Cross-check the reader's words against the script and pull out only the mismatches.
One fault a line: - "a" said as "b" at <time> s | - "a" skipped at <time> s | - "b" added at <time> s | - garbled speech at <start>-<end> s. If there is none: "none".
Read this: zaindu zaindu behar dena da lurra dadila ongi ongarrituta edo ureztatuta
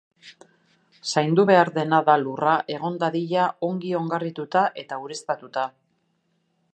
- "zaindu" skipped at 1.4 s
- "egon" added at 2.8 s
- "edo" said as "eta" at 4.8 s